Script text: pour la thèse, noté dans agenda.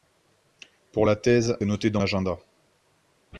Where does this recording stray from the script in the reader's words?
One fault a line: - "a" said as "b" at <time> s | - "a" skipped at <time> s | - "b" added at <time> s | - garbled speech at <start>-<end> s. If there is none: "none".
none